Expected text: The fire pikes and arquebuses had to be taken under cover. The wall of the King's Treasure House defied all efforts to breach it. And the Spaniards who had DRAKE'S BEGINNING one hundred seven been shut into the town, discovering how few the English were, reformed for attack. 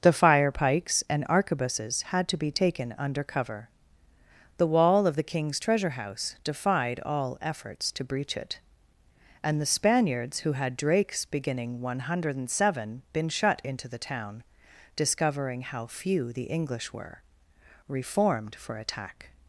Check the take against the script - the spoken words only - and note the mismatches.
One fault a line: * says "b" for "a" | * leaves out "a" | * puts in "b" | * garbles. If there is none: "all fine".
all fine